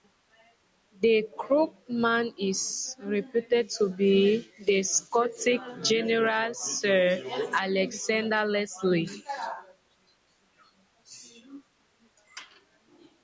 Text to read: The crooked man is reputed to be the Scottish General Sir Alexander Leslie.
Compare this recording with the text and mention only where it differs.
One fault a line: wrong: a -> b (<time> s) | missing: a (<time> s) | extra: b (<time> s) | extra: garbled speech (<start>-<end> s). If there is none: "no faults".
no faults